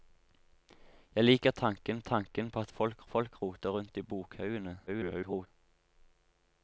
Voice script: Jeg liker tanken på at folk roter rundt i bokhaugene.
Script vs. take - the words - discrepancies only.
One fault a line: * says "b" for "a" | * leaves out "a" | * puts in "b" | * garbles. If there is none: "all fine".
* puts in "tanken"
* puts in "folk"
* garbles